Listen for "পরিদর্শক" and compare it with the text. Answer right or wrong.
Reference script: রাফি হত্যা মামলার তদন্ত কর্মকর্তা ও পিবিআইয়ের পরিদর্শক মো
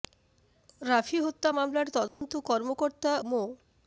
wrong